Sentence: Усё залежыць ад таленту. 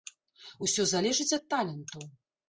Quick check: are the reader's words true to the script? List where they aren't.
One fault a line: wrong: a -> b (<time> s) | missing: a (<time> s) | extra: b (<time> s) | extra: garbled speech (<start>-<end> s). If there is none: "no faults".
no faults